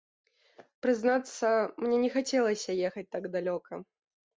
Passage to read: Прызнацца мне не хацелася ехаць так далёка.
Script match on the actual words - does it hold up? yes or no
yes